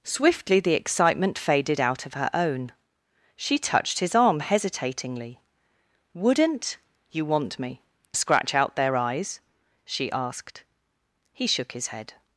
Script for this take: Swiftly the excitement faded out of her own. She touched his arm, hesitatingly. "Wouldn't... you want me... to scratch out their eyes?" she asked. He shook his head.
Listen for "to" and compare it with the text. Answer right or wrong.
wrong